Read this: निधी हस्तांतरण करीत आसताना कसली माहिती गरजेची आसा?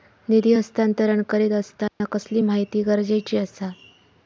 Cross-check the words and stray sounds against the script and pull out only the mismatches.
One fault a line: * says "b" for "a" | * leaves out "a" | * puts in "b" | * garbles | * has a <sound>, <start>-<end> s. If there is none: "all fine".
* has a dropout, 1.9-2.0 s